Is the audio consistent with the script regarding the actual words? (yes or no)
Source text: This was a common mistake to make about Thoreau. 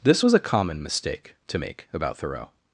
yes